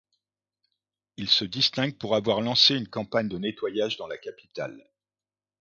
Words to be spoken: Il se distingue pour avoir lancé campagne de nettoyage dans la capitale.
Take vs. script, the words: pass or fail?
fail